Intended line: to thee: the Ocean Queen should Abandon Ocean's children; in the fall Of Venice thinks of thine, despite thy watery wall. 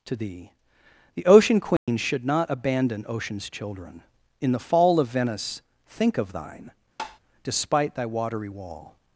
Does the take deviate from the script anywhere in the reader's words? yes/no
yes